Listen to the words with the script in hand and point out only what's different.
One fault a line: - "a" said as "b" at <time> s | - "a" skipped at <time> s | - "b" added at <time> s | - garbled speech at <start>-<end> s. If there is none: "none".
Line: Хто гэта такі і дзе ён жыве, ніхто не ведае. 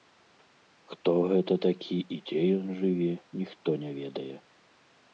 none